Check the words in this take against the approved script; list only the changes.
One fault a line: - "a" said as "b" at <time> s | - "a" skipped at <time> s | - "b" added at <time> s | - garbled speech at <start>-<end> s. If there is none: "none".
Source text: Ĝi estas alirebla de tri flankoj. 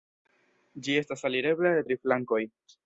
none